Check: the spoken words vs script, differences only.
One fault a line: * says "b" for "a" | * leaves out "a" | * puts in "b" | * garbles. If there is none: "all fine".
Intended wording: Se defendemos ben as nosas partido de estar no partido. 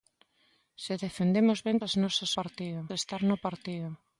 all fine